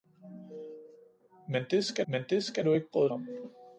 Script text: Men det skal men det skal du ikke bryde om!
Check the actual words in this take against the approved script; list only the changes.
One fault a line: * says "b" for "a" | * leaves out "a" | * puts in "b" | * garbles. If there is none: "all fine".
all fine